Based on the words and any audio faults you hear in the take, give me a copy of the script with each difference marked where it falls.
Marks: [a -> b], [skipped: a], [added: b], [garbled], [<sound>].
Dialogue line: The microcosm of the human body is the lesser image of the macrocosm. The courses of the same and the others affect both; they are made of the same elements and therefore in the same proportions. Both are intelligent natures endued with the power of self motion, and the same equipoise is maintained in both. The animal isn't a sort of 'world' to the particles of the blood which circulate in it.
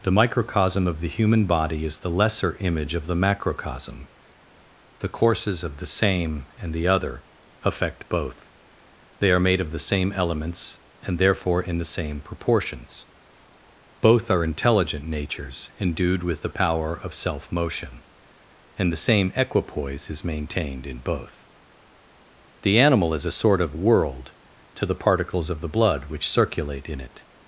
The microcosm of the human body is the lesser image of the macrocosm. The courses of the same and the [others -> other] affect both; they are made of the same elements and therefore in the same proportions. Both are intelligent natures endued with the power of self motion, and the same equipoise is maintained in both. The animal [isn't -> is] a sort of 'world' to the particles of the blood which circulate in it.